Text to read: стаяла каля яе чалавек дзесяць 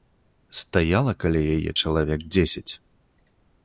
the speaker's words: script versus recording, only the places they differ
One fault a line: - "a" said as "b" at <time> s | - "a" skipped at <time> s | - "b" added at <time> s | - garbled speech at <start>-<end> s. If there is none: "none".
none